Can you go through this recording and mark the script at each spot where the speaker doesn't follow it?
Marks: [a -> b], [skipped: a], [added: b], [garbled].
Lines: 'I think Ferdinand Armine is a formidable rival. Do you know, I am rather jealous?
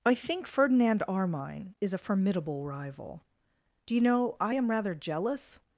'I think Ferdinand Armine is a formidable rival. Do you know, I am rather jealous?